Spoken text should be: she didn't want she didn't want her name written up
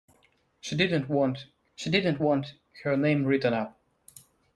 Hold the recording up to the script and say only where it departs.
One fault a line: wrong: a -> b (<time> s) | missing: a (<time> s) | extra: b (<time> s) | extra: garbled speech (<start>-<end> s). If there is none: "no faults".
no faults